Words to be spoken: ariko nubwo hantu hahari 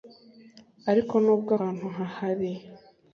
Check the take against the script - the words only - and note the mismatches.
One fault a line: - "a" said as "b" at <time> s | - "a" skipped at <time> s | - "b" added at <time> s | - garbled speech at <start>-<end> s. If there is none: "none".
none